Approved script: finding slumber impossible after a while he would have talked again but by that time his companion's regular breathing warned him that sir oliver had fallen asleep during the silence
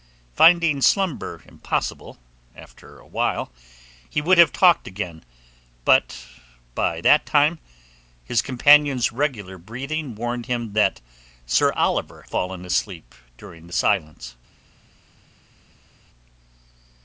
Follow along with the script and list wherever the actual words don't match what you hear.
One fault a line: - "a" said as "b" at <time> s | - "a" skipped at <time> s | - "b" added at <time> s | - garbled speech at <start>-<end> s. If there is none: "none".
- "had" skipped at 12.2 s